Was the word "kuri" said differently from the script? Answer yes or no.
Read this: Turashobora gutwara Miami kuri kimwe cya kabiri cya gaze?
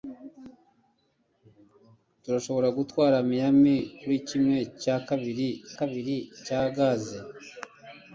no